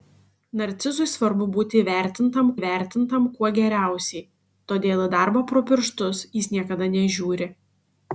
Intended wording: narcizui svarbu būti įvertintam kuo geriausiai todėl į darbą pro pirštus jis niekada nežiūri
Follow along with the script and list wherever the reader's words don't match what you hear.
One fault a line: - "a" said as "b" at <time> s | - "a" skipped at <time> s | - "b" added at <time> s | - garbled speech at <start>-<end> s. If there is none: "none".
- "įvertintam" added at 2.6 s